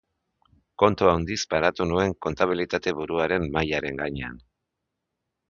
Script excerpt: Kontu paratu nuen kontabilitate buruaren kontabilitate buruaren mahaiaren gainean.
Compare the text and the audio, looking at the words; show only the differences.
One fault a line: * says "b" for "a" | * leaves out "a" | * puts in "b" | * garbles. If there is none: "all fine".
* puts in "handiz"
* leaves out "kontabilitate buruaren"